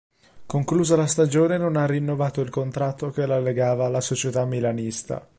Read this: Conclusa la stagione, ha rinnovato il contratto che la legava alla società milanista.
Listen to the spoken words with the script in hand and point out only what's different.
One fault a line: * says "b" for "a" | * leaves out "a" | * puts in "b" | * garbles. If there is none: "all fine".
* puts in "non"